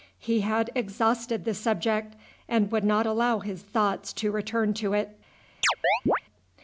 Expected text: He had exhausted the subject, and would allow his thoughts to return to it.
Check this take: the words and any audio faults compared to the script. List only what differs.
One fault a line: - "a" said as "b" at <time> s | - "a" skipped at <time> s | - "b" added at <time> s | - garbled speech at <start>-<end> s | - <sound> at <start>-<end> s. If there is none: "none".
- "not" added at 2.8 s
- chirp at 5.6-6.2 s